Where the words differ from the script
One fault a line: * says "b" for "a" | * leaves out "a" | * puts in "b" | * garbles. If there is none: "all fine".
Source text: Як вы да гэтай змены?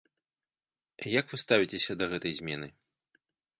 * puts in "ставіцеся"